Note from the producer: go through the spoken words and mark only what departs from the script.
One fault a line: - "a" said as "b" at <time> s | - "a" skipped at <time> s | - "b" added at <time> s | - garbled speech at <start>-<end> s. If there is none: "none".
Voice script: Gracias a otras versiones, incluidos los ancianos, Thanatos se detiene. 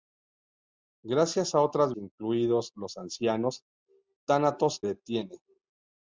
- "versiones" skipped at 1.9 s
- "se" skipped at 4.8 s